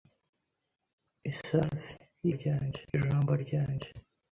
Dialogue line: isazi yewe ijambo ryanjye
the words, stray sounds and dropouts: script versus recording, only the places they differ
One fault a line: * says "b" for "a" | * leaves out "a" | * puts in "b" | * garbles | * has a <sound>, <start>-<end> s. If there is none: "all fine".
* says "ryanjye" for "yewe"